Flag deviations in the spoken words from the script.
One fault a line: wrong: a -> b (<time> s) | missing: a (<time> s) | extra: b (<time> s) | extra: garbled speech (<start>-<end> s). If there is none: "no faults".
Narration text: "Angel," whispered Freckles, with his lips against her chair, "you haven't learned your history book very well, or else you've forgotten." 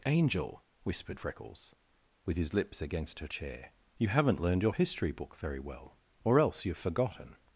no faults